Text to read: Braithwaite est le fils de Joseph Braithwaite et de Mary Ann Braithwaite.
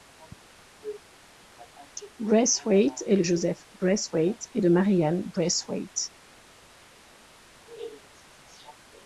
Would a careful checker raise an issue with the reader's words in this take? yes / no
yes